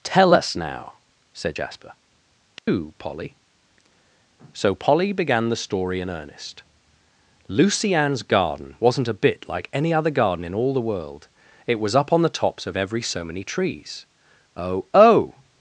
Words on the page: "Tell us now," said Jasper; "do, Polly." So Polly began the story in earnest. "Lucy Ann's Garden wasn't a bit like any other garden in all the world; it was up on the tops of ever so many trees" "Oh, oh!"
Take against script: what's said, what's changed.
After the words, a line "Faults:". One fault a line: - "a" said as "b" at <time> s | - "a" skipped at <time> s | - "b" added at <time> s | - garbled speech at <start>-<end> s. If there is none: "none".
"Tell us now," said Jasper; "do, Polly." So Polly began the story in earnest. "Lucy Ann's Garden wasn't a bit like any other garden in all the world; it was up on the tops of every so many trees" "Oh, oh!"
Faults:
- "ever" said as "every" at 12.8 s